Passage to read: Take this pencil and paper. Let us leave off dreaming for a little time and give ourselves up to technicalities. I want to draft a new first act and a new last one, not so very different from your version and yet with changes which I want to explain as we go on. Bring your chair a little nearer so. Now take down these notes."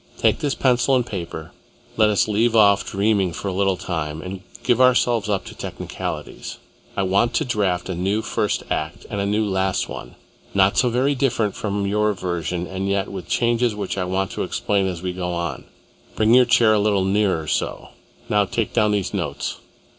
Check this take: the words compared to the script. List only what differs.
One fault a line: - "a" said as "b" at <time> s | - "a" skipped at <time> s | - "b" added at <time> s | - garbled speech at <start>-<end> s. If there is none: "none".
none